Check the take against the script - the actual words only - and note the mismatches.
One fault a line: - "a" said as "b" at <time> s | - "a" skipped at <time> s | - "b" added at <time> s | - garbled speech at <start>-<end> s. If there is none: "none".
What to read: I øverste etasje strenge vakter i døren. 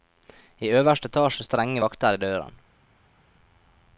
none